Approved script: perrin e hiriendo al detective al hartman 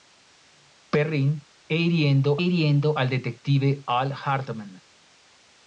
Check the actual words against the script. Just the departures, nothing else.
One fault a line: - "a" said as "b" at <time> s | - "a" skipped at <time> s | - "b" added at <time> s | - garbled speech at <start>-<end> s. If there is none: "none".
- "hiriendo" added at 2.4 s